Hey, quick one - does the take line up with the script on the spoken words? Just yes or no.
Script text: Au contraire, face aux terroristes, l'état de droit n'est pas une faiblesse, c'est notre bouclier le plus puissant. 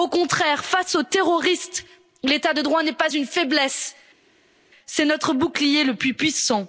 yes